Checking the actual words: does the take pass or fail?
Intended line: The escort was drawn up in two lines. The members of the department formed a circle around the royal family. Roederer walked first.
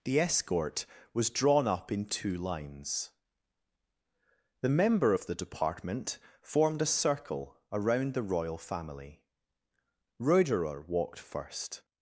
fail